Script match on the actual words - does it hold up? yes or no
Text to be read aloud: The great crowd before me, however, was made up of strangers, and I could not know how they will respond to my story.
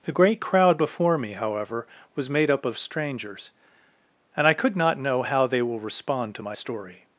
yes